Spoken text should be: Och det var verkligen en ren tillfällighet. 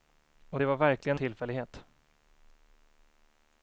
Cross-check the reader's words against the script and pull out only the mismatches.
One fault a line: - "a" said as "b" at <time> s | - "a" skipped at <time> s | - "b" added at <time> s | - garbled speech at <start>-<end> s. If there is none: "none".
- "en ren" skipped at 1.2 s